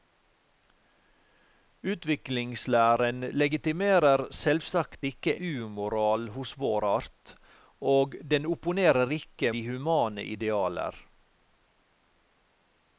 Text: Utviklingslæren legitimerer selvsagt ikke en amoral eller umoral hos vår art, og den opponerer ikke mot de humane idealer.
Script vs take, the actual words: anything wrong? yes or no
yes